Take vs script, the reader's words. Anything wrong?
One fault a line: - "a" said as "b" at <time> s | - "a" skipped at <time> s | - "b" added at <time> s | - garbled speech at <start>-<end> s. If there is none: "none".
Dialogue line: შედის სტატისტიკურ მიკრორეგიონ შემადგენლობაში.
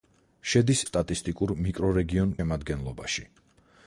none